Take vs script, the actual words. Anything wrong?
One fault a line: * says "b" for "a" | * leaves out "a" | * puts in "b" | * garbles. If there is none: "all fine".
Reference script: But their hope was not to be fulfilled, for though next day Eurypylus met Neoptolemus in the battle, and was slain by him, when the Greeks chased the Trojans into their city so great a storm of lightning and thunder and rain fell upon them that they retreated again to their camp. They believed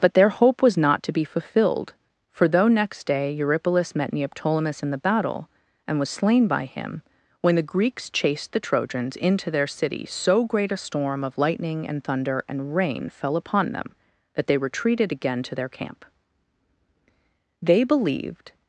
all fine